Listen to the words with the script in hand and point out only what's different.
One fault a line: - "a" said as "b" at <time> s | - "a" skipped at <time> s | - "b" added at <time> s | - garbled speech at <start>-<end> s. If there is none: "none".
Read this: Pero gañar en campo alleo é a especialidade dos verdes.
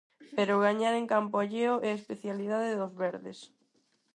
none